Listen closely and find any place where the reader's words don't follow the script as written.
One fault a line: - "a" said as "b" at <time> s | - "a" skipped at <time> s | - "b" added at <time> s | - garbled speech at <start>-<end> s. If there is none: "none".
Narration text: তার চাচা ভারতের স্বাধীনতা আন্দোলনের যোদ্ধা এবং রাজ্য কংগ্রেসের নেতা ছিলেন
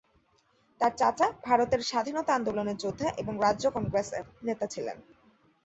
none